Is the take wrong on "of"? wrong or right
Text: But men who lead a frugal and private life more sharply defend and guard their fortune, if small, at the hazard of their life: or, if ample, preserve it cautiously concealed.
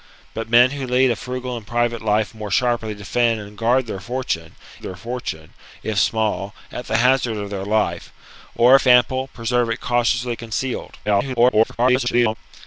right